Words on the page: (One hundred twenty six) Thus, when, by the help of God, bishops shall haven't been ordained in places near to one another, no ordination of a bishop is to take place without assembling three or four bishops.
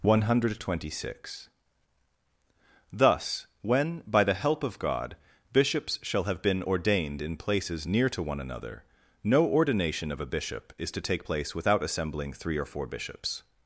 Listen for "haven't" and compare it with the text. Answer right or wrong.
wrong